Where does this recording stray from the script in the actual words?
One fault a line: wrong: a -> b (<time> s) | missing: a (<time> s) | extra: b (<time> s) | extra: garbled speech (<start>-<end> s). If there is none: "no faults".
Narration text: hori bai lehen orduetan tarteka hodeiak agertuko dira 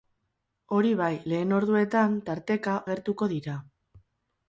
missing: hodeiak (2.8 s)